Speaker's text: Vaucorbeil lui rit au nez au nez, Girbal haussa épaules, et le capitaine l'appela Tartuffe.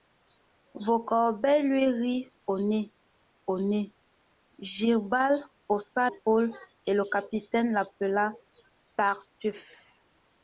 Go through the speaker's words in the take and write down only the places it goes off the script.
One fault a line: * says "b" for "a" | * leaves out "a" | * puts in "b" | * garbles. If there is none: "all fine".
all fine